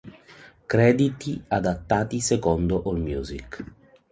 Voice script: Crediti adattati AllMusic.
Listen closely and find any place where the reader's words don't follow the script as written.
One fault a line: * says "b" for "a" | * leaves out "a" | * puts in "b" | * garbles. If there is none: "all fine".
* puts in "secondo"